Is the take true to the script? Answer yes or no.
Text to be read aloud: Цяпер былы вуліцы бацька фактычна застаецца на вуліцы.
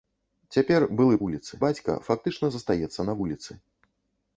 yes